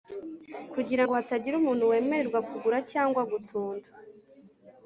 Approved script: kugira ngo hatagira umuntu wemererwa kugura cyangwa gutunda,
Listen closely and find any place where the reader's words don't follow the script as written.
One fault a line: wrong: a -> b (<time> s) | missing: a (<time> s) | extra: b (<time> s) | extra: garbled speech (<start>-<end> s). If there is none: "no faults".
no faults